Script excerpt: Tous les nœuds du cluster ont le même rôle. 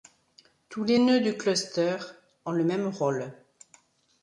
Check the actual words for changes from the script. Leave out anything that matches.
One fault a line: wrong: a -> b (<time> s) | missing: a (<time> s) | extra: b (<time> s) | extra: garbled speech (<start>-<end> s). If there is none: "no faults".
no faults